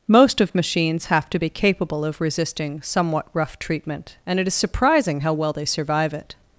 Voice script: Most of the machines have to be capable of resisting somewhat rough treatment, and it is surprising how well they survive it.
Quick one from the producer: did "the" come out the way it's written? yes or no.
no